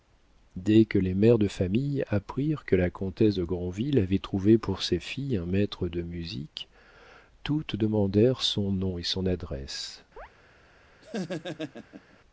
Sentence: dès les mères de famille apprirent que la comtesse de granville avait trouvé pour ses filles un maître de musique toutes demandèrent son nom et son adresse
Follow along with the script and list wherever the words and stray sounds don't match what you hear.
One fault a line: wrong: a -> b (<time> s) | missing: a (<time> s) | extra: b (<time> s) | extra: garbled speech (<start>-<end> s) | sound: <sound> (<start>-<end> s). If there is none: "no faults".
extra: que (0.8 s)
sound: chirp (10.2-10.3 s)
sound: laugh (11.0-12.2 s)